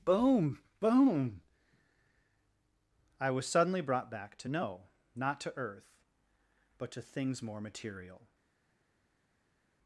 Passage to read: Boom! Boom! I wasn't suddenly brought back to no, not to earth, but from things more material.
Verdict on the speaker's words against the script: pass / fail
fail